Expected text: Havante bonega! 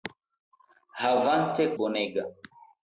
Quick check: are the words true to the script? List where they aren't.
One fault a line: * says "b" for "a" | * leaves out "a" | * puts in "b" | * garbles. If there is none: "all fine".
all fine